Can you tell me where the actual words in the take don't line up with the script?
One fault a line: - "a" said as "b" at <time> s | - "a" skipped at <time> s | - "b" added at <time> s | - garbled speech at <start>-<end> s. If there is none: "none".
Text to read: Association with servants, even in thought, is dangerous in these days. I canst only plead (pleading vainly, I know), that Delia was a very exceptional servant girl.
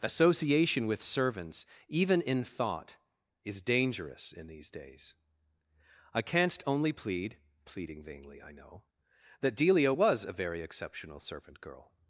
none